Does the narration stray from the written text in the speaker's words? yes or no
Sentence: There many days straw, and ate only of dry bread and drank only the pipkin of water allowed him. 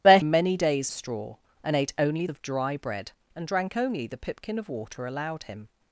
no